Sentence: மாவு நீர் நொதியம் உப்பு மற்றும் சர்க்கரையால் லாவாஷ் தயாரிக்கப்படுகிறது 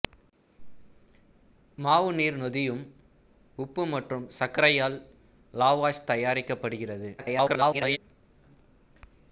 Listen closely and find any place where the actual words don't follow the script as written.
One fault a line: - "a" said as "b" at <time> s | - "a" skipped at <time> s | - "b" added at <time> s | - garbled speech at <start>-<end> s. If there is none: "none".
- garbled speech at 7.2-8.0 s